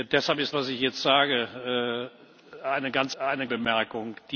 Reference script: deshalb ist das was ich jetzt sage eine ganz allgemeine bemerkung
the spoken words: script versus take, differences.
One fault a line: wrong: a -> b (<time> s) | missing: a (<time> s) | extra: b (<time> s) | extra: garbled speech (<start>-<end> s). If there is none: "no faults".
missing: das (0.6 s)
wrong: allgemeine -> eine (3.2 s)